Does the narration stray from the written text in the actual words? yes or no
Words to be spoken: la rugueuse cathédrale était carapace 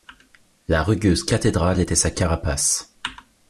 yes